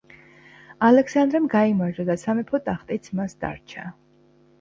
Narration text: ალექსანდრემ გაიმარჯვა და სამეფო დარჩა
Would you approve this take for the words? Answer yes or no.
no